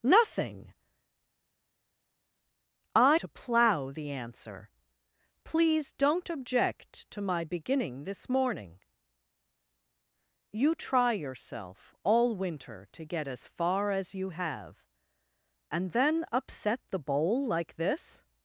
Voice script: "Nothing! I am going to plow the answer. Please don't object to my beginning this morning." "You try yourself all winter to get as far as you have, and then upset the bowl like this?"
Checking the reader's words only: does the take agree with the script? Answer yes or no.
no